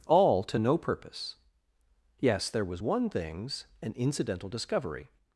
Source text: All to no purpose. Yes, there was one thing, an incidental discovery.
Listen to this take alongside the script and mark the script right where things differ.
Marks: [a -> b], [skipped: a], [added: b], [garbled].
All to no purpose. Yes, there was one [thing, -> things] an incidental discovery.